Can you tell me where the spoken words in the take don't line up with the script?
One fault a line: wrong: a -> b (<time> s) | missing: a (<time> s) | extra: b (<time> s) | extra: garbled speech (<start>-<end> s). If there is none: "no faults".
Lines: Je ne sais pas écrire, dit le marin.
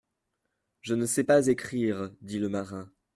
no faults